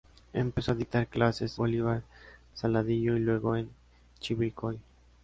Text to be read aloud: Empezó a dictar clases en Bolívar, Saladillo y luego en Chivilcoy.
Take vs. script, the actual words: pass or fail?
fail